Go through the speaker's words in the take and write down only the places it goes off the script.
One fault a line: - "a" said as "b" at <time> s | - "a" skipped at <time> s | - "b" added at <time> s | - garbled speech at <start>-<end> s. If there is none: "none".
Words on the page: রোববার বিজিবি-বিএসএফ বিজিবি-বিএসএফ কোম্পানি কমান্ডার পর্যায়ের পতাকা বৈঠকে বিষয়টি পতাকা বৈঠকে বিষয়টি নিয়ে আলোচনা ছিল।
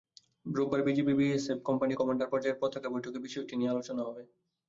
- "বিজিবি-বিএসএফ" skipped at 1.6 s
- "পতাকা বৈঠকে বিষয়টি" skipped at 3.5 s
- "ছিল" said as "হবে" at 4.1 s